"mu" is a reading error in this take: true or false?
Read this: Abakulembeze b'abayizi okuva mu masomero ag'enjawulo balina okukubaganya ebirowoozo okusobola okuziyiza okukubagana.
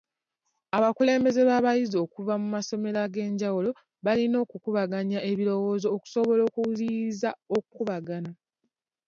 false